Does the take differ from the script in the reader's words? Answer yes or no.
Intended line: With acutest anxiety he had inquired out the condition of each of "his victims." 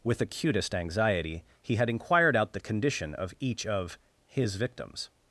no